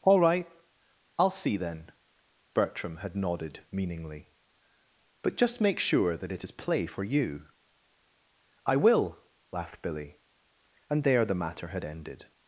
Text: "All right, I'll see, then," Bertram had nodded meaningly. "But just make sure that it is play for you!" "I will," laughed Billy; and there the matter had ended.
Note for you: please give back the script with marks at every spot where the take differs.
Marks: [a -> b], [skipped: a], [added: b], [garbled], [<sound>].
"All right, I'll see, then," Bertram had nodded meaningly. "But just make sure that it is play for you!" "I will," laughed Billy; and there the matter had ended.